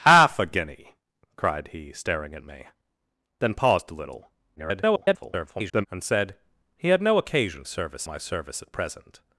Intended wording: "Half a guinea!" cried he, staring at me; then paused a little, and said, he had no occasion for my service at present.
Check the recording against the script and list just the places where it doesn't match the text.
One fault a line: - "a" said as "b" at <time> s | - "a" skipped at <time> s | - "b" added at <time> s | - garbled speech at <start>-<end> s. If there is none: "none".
- garbled speech at 4.6-5.9 s
- "for" said as "service" at 7.6 s